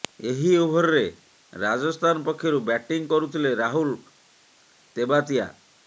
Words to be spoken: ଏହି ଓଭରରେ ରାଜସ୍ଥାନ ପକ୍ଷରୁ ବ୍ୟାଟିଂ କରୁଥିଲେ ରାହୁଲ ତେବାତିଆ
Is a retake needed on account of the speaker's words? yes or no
no